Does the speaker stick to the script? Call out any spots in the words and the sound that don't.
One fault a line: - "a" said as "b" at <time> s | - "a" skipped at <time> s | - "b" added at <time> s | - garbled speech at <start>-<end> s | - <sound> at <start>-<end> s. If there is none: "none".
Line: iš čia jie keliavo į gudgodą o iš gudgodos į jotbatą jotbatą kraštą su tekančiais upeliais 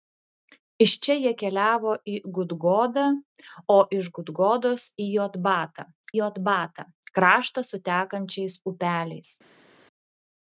none